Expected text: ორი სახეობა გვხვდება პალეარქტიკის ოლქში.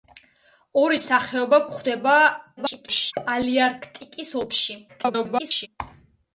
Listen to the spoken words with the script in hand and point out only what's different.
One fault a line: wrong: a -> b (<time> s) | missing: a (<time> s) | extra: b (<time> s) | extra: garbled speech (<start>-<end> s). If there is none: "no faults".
extra: garbled speech (2.6-3.1 s)
extra: garbled speech (4.9-5.7 s)